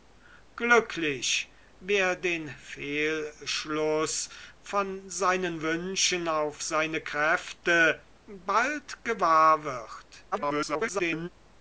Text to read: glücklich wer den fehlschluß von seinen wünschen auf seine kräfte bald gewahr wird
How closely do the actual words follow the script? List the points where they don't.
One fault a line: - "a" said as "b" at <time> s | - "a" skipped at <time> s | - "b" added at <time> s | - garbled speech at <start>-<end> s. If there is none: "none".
- garbled speech at 10.3-11.3 s